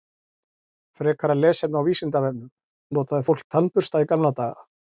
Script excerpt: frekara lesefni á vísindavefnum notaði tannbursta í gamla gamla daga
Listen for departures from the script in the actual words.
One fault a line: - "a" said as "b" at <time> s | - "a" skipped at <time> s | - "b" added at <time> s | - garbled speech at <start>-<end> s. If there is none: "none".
- "fólk" added at 3.3 s
- "gamla" skipped at 4.4 s